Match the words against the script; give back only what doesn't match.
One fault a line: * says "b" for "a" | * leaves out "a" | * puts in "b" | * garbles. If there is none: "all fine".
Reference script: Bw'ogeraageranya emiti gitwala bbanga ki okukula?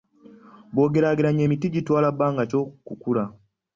all fine